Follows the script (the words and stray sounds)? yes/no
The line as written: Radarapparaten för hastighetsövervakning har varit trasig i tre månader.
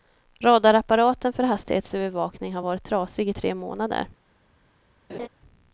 no